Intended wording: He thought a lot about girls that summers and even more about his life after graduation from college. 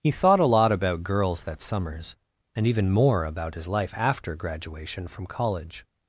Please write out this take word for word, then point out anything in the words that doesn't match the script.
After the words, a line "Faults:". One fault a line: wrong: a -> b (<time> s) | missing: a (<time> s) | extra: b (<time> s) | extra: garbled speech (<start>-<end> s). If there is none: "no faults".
He thought a lot about girls that summers and even more about his life after graduation from college.
Faults:
no faults